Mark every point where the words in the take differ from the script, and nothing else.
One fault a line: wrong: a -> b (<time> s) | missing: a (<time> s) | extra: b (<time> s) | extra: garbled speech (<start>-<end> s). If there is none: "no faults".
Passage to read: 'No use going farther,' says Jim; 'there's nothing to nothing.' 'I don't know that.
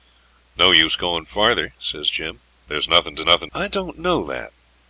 no faults